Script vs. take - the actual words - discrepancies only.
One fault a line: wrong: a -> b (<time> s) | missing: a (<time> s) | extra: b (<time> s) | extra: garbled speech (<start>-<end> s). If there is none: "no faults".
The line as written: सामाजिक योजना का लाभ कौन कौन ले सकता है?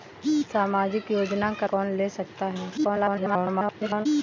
missing: लाभ कौन (1.7 s)
extra: garbled speech (2.8-4.1 s)